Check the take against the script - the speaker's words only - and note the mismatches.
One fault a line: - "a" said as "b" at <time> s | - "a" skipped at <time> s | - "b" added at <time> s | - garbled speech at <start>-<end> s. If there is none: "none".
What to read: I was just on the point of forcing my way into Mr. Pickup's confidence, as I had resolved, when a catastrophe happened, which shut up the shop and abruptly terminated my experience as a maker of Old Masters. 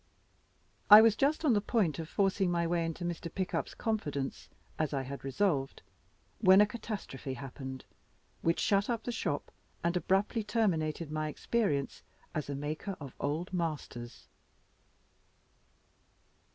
none